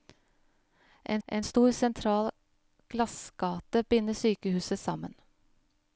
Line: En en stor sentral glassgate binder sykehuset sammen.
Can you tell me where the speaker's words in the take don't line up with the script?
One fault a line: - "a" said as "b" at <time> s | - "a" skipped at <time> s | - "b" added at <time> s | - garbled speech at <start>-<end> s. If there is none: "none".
none